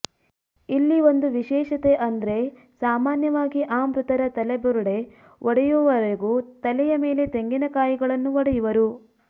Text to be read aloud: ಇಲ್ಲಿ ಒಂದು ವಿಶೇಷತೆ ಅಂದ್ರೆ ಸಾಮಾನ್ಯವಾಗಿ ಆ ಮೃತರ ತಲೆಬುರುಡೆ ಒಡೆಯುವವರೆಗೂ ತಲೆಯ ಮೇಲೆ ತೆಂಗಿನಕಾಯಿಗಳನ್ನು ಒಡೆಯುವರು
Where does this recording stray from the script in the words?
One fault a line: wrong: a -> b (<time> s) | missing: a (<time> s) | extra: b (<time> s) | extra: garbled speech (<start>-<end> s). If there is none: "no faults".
no faults